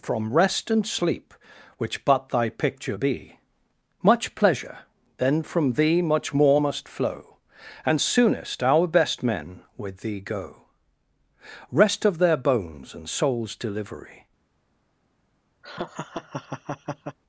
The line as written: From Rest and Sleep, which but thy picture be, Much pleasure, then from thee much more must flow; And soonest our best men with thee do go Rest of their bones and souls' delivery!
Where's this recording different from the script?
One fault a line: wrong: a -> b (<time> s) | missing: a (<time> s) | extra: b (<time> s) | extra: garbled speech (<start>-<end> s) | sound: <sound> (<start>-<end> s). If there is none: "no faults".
missing: do (10.2 s)
sound: laugh (15.6-17.2 s)